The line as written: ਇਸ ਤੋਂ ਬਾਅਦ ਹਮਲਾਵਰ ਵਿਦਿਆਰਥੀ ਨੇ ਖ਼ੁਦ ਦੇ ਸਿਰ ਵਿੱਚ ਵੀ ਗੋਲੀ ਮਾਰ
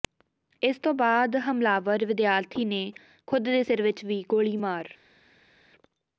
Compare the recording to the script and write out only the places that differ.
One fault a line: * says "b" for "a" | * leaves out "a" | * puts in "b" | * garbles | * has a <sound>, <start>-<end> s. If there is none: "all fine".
all fine